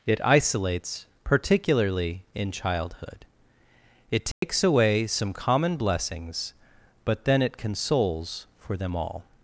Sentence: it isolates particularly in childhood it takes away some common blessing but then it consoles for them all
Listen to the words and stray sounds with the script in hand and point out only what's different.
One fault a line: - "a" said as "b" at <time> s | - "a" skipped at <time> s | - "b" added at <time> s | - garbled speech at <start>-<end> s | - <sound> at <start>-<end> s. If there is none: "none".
- dropout at 4.3-4.4 s
- "blessing" said as "blessings" at 5.8 s